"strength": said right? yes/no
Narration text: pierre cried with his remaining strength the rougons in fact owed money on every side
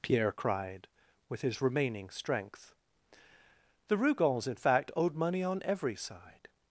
yes